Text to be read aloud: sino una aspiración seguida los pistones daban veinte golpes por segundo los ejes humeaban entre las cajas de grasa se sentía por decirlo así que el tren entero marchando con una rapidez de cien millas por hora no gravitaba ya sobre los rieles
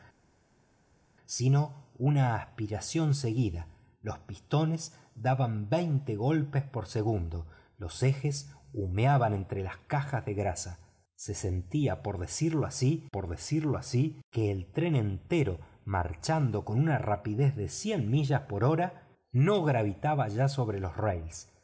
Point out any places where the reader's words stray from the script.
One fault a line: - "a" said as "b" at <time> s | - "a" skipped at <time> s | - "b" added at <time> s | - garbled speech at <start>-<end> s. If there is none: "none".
- "por decirlo así" added at 13.1 s